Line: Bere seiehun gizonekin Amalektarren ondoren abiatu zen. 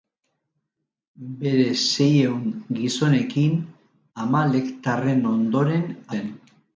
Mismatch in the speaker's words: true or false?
true